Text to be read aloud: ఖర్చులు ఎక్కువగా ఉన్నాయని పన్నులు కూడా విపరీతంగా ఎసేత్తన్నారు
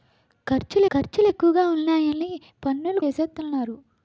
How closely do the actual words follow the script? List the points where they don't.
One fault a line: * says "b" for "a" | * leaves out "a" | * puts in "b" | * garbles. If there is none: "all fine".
* puts in "ఖర్చులు"
* leaves out "కూడా విపరీతంగా"